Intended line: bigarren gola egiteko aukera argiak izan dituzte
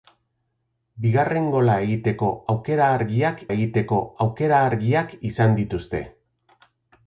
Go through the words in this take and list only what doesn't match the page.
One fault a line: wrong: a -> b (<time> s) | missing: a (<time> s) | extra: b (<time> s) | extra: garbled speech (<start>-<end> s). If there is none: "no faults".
extra: egiteko aukera argiak (3.5 s)